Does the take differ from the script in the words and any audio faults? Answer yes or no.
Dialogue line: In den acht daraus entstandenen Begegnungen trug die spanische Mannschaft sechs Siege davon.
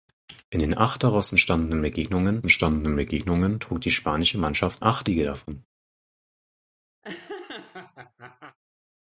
yes